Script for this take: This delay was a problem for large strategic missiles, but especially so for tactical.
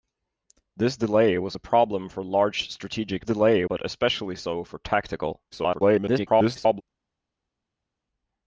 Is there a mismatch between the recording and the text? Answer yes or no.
yes